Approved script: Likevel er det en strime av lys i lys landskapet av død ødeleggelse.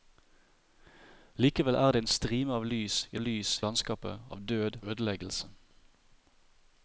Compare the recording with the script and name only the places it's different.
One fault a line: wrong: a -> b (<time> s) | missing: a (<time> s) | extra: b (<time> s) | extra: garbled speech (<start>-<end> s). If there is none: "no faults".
no faults